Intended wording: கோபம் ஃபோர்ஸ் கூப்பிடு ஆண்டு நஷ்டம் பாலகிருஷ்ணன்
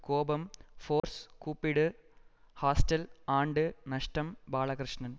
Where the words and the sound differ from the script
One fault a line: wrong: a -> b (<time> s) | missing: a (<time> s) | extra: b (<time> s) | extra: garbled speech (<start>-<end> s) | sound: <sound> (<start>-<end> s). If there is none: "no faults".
sound: dropout (1.0-1.0 s)
extra: ஹாஸ்டல் (2.6 s)